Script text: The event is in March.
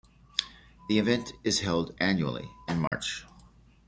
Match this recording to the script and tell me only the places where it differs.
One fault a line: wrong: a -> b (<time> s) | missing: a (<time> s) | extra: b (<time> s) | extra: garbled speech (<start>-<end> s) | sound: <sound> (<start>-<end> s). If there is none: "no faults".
extra: held annually (1.6 s)
sound: dropout (2.9-2.9 s)